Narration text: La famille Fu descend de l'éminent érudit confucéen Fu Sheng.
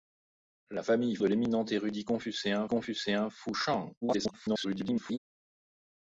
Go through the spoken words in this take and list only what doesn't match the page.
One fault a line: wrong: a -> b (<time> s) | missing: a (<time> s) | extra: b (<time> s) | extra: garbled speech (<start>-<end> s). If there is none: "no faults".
missing: Fu descend (1.2 s)
extra: confucéen (2.7 s)
extra: garbled speech (4.0-5.2 s)